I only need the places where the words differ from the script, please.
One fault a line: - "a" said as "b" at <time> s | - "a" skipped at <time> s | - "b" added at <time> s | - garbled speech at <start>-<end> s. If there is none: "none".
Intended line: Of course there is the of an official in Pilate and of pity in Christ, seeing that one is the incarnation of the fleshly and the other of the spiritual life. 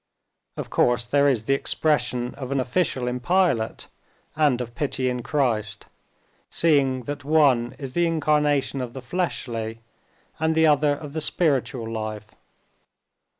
- "expression" added at 1.5 s